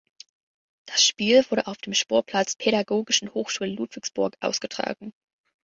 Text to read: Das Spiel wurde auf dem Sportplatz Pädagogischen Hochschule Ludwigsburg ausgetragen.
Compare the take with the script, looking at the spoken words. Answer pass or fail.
pass